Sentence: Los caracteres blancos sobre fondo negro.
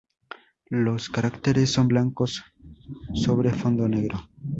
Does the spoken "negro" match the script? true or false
true